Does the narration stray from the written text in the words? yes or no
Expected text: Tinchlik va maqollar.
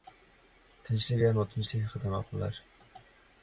yes